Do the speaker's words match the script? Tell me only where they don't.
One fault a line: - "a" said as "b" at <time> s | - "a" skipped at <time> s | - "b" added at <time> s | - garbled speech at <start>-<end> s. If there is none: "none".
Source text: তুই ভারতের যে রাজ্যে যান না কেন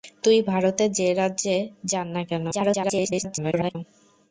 - garbled speech at 2.5-3.8 s